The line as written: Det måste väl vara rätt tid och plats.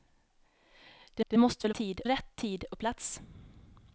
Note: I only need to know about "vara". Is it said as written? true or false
false